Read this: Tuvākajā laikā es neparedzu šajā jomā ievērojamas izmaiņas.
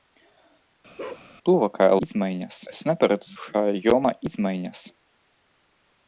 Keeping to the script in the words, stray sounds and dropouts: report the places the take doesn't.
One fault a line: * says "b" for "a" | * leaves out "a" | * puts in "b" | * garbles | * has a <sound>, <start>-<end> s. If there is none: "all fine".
* has a bark, 1.0-1.3 s
* says "izmaiņas" for "laikā"
* leaves out "ievērojamas"